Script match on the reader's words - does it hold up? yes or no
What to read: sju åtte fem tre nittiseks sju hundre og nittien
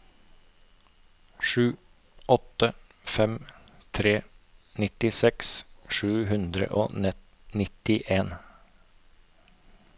yes